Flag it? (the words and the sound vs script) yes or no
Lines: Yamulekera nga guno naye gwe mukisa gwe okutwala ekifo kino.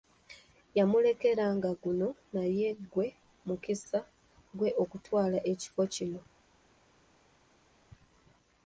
no